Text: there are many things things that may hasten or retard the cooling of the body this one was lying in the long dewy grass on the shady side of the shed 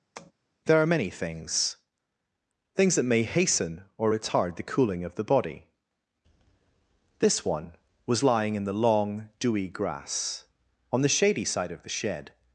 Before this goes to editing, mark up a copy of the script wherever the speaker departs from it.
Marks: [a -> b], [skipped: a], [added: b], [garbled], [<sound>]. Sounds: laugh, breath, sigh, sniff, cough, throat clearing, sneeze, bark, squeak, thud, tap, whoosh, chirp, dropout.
[tap] there are many things things that may hasten or retard the cooling of the body this one was lying in the long dewy grass on the shady side of the shed